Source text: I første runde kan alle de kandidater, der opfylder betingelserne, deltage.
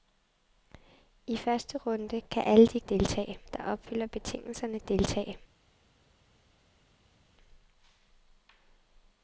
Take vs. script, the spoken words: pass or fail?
fail